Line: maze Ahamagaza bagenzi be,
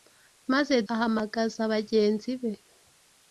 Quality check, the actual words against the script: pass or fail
pass